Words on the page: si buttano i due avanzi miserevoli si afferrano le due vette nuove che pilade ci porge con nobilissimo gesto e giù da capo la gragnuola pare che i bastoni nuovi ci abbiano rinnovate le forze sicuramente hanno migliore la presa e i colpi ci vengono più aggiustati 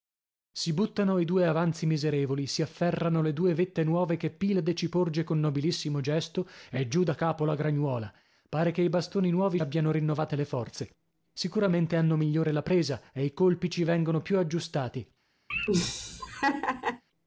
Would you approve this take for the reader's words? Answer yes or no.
no